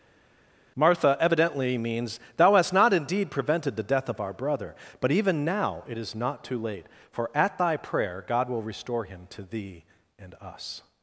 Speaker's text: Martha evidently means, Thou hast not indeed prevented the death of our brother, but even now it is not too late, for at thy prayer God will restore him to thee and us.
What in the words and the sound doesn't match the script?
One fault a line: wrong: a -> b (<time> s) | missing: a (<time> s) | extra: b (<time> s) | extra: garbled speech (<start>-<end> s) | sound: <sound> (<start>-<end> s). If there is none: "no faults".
no faults